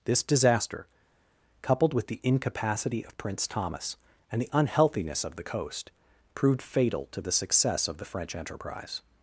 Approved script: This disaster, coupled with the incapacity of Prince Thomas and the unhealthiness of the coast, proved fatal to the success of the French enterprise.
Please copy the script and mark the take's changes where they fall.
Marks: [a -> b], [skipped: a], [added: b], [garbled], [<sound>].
This disaster, coupled with the incapacity of Prince Thomas and the unhealthiness of the coast, proved fatal to the success of the French enterprise.